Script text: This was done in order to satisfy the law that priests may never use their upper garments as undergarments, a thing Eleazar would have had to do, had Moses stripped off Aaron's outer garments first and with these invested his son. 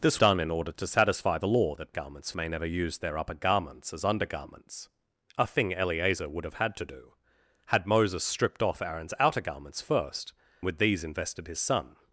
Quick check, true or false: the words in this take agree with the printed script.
false